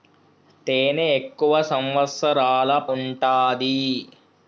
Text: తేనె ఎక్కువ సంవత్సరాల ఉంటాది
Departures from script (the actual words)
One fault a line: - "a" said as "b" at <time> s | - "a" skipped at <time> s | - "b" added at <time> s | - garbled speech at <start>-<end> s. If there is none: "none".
none